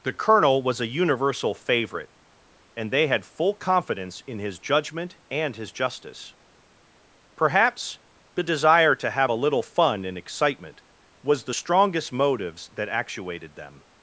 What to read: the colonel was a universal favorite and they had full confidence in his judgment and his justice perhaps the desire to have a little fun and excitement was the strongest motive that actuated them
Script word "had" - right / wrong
right